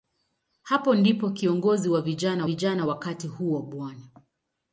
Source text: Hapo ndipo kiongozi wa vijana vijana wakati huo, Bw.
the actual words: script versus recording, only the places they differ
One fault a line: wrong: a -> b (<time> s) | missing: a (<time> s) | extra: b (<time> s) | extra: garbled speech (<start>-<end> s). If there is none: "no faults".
no faults